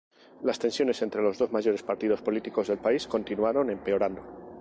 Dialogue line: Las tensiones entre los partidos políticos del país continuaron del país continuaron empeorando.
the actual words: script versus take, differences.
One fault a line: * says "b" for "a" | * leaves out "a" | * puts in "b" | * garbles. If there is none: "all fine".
* puts in "dos mayores"
* leaves out "del país continuaron"